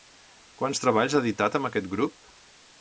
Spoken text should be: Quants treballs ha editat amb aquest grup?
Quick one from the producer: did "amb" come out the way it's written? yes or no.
yes